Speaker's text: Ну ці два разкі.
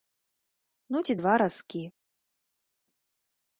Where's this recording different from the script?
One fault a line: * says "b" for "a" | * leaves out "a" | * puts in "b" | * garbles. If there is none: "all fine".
all fine